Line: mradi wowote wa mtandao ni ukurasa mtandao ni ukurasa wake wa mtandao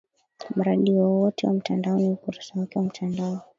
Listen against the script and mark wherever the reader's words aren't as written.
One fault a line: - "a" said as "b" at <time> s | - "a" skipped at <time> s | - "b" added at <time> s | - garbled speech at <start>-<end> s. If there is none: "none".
- "mtandao ni ukurasa" skipped at 2.6 s